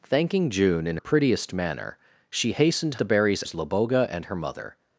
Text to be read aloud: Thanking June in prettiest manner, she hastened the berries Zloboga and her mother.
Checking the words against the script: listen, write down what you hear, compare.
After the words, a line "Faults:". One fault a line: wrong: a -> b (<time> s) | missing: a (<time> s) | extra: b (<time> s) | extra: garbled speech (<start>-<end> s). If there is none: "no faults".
Thanking June in prettiest manner, she hastened the berries Zloboga and her mother.
Faults:
no faults